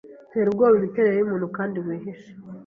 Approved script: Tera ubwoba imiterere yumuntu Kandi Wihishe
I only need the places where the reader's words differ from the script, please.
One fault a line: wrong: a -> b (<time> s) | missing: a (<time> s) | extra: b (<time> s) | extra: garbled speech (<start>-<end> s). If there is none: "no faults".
no faults